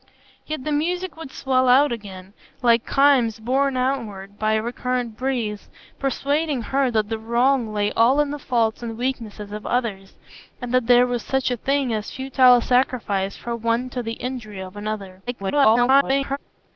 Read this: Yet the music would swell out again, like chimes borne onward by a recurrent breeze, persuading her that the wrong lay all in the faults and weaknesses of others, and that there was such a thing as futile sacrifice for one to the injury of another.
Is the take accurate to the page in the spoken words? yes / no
no